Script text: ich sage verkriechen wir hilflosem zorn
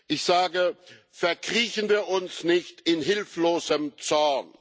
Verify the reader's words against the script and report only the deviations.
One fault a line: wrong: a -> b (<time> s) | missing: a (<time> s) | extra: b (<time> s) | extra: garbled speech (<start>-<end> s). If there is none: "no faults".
extra: uns nicht in (2.1 s)